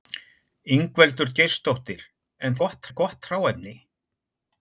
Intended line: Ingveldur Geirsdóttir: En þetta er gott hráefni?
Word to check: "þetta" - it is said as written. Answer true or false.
false